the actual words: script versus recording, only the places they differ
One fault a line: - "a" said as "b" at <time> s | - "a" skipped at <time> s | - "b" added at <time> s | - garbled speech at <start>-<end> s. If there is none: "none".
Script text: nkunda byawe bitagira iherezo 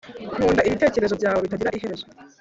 - "ibitekerezo" added at 0.7 s